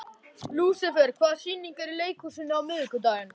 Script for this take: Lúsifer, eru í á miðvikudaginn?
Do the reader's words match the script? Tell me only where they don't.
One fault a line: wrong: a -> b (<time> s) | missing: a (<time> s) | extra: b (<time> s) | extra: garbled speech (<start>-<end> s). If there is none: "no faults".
extra: hvaða sýningar (1.2 s)
extra: leikhúsinu (2.0 s)